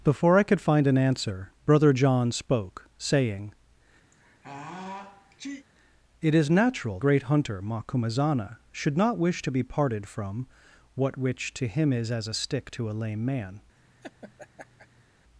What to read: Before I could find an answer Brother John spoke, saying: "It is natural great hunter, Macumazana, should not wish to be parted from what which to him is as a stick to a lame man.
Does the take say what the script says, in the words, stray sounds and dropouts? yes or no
no